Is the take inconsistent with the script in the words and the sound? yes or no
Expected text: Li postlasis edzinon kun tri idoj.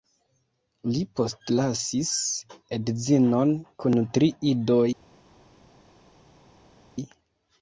no